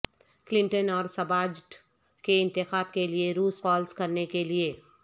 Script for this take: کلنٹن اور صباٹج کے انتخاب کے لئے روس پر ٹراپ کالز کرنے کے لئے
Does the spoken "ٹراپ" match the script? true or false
false